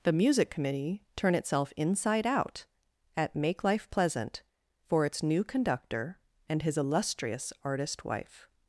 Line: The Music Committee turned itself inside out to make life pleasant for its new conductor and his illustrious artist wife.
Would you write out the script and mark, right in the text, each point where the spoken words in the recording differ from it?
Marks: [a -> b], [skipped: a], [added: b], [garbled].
The Music Committee [turned -> turn] itself inside out [to -> at] make life pleasant for its new conductor and his illustrious artist wife.